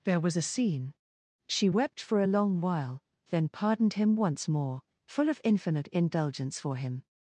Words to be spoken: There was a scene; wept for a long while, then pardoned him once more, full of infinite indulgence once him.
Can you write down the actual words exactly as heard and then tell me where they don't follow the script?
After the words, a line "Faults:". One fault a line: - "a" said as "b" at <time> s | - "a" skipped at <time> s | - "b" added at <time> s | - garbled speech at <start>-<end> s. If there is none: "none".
There was a scene; she wept for a long while, then pardoned him once more, full of infinite indulgence for him.
Faults:
- "she" added at 1.5 s
- "once" said as "for" at 6.6 s